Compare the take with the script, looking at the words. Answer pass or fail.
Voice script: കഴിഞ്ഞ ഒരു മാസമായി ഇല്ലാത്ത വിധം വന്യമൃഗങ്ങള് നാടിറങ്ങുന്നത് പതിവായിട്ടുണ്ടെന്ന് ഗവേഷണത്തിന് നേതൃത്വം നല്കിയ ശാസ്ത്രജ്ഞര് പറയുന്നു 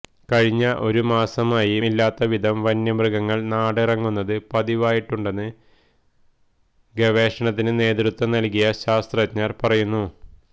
pass